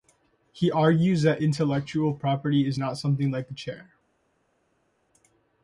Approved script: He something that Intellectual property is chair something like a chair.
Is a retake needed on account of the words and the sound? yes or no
yes